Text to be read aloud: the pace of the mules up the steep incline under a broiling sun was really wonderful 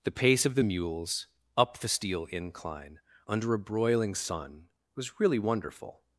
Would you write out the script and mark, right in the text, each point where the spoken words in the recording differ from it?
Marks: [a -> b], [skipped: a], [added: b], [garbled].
the pace of the mules up the [steep -> steel] incline under a broiling sun was really wonderful